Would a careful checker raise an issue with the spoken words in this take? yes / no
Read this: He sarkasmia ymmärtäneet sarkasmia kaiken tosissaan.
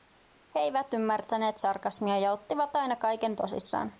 yes